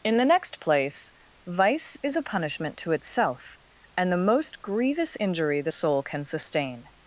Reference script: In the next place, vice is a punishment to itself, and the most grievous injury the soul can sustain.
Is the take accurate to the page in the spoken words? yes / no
yes